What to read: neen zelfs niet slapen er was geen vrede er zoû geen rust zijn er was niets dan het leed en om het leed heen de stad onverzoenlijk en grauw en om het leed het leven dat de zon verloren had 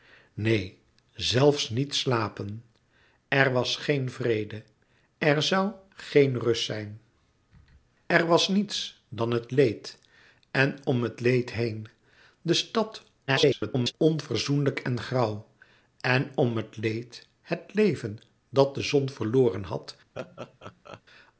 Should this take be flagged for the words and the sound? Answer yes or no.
yes